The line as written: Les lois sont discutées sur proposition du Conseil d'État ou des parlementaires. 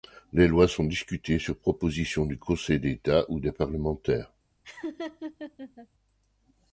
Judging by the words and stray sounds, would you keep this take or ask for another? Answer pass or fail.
fail